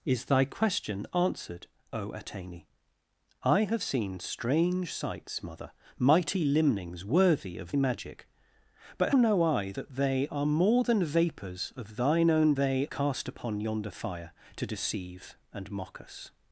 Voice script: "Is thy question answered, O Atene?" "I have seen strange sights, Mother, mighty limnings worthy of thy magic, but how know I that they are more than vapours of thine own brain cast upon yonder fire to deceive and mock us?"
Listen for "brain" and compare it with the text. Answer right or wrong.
wrong